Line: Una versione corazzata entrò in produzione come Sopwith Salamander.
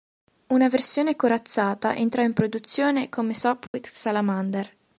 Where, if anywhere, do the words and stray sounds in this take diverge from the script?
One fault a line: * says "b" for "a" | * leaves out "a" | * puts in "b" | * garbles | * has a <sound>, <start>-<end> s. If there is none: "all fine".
* has a dropout, 3.7-3.7 s